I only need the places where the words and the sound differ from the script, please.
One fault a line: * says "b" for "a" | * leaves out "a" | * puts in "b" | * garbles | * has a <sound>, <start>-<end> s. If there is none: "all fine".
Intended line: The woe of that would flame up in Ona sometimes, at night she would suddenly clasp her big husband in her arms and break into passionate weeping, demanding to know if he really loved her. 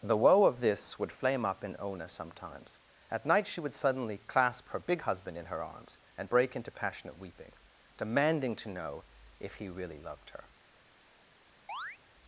* says "this" for "that"
* has a chirp, 11.7-12.0 s